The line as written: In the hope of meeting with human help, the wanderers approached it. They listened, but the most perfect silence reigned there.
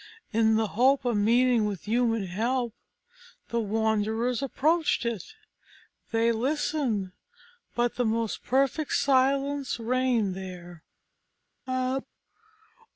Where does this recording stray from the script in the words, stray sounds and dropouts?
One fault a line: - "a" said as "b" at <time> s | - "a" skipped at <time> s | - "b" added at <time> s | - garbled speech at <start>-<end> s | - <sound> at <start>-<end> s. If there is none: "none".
- sneeze at 11.7-12.1 s